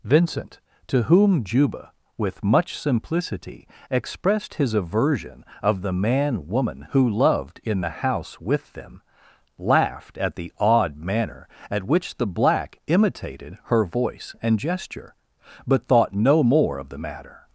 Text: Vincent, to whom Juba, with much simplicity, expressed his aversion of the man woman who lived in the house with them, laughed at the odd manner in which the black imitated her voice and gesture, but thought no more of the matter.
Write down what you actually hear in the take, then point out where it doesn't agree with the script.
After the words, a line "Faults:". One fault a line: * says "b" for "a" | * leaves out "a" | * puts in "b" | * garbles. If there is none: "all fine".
Vincent, to whom Juba, with much simplicity, expressed his aversion of the man woman who loved in the house with them, laughed at the odd manner at which the black imitated her voice and gesture, but thought no more of the matter.
Faults:
* says "loved" for "lived"
* says "at" for "in"